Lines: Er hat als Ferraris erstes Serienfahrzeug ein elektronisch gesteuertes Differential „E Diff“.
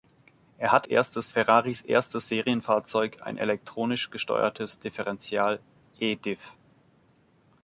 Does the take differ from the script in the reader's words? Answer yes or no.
yes